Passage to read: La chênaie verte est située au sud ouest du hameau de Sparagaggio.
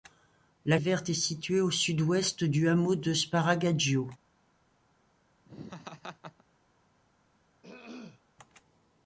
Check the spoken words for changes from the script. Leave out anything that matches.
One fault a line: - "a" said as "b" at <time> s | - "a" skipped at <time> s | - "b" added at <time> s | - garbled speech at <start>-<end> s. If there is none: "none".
- "chênaie" skipped at 0.8 s